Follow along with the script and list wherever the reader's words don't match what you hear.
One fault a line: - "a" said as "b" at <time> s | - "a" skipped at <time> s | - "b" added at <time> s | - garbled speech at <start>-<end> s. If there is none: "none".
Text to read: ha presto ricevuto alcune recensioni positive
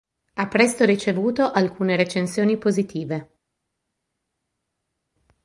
none